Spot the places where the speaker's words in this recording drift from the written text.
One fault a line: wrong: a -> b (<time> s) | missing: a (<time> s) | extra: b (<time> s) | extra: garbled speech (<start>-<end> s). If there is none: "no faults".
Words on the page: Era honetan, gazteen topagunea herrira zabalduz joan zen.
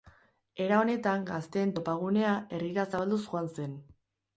no faults